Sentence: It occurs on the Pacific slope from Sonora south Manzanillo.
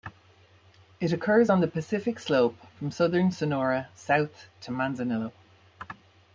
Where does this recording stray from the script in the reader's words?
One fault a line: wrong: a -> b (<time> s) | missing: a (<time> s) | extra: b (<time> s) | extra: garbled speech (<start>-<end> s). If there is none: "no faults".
extra: southern (2.9 s)
extra: to (4.6 s)